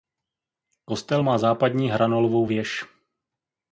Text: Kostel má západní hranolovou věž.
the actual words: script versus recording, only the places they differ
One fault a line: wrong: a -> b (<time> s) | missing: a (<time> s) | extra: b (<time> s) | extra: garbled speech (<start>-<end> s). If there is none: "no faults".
no faults